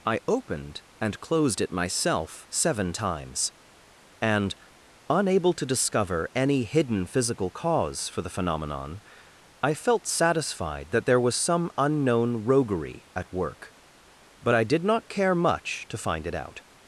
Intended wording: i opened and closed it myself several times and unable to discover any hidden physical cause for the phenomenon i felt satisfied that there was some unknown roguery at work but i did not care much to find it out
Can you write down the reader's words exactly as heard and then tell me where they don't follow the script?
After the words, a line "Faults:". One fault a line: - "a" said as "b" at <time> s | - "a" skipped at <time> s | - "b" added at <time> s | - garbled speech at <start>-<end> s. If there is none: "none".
i opened and closed it myself seven times and unable to discover any hidden physical cause for the phenomenon i felt satisfied that there was some unknown roguery at work but i did not care much to find it out
Faults:
- "several" said as "seven" at 2.5 s